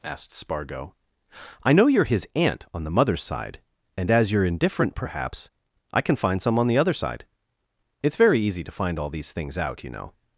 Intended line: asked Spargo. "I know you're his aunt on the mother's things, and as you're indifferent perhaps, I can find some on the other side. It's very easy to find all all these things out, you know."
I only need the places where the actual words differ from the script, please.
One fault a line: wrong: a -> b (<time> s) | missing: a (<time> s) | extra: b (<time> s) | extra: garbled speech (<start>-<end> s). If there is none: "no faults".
wrong: things -> side (3.2 s)
missing: all (9.1 s)